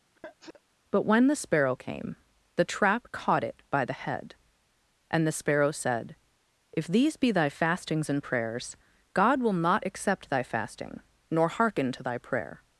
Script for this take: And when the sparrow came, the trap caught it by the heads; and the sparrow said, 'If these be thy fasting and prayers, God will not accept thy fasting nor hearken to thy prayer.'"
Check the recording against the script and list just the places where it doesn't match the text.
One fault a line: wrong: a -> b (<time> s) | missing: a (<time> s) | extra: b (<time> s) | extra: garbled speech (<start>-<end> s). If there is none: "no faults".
wrong: And -> But (0.9 s)
wrong: heads -> head (4.0 s)
wrong: fasting -> fastings (7.5 s)